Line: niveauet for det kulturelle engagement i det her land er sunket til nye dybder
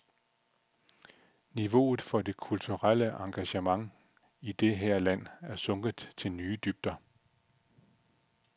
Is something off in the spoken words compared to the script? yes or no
no